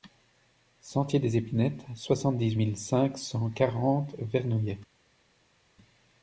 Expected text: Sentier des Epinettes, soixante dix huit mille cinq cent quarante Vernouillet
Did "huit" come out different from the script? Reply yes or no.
yes